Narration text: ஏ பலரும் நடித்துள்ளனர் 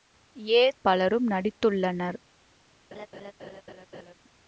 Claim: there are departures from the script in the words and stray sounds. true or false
true